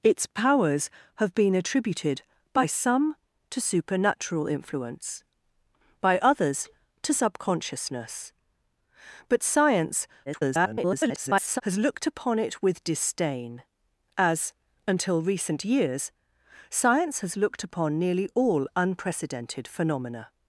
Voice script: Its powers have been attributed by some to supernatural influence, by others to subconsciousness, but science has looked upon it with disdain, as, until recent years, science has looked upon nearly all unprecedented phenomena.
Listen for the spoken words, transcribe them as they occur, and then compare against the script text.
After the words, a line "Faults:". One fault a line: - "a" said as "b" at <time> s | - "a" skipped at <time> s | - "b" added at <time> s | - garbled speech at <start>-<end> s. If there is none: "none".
Its powers have been attributed by some to supernatural influence, by others to subconsciousness, but science [garbled] has looked upon it with disdain, as, until recent years, science has looked upon nearly all unprecedented phenomena.
Faults:
- garbled speech at 10.3-11.6 s